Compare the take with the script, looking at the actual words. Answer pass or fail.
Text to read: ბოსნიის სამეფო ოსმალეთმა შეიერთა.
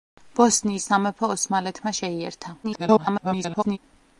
fail